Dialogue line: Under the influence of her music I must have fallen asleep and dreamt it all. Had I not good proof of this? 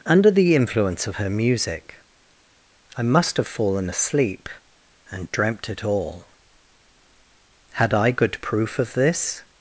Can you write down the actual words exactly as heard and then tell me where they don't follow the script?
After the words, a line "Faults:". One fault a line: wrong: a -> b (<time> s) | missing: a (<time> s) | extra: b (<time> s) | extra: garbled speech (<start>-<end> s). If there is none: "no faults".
Under the influence of her music I must have fallen asleep and dreamt it all. Had I good proof of this?
Faults:
missing: not (8.1 s)